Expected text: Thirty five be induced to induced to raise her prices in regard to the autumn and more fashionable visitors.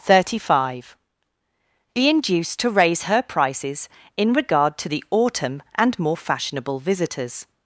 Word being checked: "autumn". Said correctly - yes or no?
yes